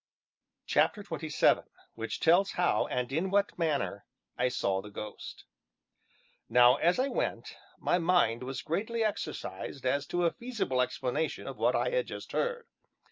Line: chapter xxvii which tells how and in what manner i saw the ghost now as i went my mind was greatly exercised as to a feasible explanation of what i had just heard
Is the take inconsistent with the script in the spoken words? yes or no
no